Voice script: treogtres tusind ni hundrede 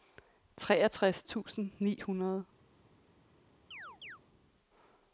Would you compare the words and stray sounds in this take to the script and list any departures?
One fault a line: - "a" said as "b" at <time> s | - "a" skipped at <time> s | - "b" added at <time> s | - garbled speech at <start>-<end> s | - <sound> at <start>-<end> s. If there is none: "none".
- chirp at 3.7-4.2 s